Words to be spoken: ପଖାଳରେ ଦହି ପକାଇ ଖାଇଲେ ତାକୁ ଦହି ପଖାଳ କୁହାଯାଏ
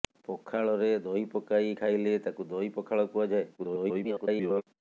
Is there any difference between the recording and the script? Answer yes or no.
yes